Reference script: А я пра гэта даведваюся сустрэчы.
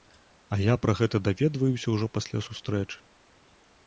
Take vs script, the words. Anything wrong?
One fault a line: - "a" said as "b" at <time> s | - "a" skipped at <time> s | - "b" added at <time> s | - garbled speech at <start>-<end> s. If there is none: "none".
- "ўжо пасля" added at 2.0 s